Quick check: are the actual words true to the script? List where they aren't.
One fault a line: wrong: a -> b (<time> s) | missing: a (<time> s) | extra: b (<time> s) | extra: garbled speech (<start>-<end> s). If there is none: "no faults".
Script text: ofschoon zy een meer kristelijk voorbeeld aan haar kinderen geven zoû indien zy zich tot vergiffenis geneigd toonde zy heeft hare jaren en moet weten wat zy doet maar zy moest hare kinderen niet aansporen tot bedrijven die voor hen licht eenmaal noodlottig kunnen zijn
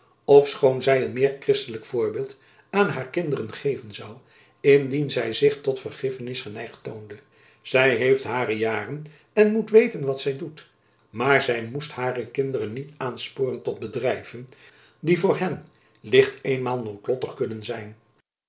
no faults